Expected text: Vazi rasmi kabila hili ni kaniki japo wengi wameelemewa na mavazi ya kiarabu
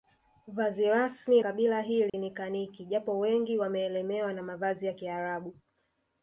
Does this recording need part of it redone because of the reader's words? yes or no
no